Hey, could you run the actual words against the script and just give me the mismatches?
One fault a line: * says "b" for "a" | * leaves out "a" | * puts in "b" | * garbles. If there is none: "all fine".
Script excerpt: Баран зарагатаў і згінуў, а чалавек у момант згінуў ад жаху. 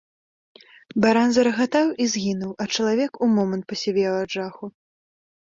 * says "пасівеў" for "згінуў"